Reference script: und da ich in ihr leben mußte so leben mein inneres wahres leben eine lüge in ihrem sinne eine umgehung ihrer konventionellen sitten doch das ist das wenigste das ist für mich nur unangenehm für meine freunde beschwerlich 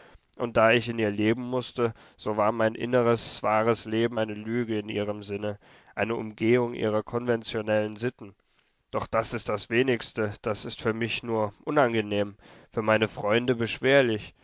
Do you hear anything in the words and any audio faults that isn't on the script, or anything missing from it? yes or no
yes